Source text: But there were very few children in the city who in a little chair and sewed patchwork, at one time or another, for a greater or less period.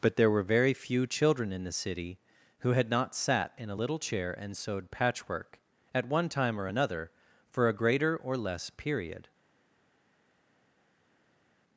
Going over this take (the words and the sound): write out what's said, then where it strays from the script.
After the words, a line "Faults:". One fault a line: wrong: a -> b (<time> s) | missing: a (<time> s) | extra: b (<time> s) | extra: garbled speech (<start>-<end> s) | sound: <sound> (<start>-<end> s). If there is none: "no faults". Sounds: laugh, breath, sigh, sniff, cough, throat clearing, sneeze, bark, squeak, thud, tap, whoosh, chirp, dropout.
But there were very few children in the city who had not sat in a little chair and sewed patchwork, at one time or another, for a greater or less period.
Faults:
extra: had not sat (2.7 s)